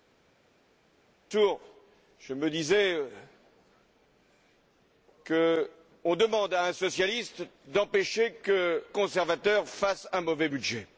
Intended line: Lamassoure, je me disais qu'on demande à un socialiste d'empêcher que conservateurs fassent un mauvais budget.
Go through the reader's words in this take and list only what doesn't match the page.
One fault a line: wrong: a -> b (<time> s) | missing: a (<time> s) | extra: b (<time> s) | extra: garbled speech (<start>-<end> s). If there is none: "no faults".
no faults